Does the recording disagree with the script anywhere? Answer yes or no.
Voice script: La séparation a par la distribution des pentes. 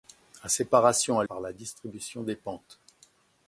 no